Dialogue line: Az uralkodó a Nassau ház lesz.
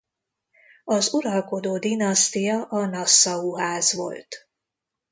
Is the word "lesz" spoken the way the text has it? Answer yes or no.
no